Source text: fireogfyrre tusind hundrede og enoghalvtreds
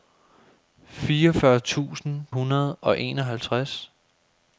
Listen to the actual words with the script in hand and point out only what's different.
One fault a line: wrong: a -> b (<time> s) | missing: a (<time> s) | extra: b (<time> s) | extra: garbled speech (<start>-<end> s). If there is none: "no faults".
no faults